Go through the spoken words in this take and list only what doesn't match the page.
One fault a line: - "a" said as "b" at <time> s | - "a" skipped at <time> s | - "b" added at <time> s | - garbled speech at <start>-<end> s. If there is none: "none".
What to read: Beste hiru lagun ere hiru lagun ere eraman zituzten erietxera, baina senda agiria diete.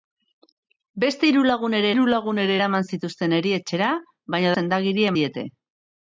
none